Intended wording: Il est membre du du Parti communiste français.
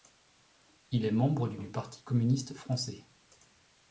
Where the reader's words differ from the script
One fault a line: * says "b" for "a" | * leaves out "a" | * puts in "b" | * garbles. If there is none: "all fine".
all fine